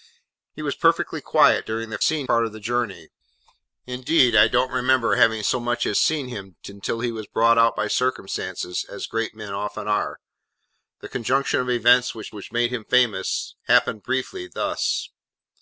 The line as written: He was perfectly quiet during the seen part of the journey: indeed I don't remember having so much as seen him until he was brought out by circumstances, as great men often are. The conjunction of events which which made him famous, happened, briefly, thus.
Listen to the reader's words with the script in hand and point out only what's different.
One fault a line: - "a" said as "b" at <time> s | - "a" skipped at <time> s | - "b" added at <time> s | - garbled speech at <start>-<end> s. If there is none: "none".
none